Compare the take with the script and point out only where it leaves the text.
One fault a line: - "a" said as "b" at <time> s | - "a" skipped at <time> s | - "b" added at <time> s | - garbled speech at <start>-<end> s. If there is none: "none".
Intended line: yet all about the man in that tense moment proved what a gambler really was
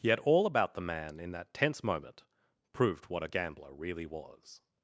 none